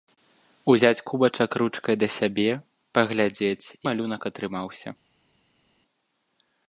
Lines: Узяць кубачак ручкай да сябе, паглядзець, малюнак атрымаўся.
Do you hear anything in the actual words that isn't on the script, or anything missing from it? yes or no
no